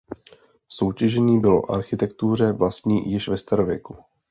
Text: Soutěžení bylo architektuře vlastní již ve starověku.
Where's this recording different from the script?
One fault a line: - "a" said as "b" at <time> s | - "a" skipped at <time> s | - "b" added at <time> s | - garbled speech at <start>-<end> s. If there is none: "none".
none